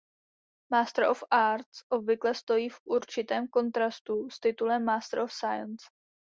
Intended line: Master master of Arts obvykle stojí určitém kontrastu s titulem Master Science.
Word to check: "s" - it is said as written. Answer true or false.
true